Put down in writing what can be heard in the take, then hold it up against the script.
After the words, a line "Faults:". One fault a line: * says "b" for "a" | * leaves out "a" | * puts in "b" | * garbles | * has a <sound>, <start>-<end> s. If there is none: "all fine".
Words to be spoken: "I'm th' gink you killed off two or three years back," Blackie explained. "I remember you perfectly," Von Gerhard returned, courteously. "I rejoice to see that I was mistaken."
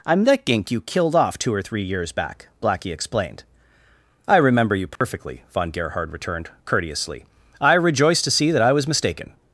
"I'm that' gink you killed off two or three years back," Blackie explained. "I remember you perfectly," Von Gerhard returned, courteously. "I rejoice to see that I was mistaken."
Faults:
* says "that" for "th"
* has a dropout, 5.0-5.0 s